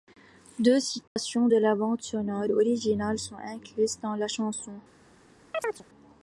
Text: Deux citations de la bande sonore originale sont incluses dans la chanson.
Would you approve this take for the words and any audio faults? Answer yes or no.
no